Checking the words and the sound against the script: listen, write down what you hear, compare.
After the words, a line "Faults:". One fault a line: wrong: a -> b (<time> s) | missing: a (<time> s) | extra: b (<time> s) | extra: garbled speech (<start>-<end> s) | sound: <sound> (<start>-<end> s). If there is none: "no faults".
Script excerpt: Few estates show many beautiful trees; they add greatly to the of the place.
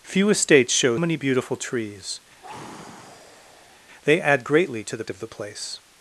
Few estates show many beautiful trees; they add greatly to the of the place.
Faults:
sound: sigh (2.4-3.8 s)